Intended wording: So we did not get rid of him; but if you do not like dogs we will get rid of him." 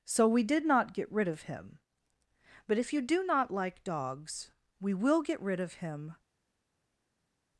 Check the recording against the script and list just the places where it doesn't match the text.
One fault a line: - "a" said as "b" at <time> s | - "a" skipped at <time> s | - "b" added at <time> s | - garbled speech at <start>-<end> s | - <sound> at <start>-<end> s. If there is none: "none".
none